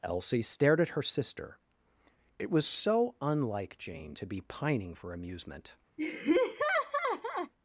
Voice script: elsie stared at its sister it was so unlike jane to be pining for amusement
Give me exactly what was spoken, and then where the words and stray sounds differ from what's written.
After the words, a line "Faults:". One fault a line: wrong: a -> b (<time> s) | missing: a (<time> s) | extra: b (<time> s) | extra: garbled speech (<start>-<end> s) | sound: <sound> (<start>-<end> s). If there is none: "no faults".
elsie stared at her sister it was so unlike jane to be pining for amusement
Faults:
wrong: its -> her (0.9 s)
sound: laugh (6.0-7.5 s)